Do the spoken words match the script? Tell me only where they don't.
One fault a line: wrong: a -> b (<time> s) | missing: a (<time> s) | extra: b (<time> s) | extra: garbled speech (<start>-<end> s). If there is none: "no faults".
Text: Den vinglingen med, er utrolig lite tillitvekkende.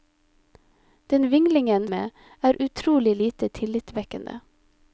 no faults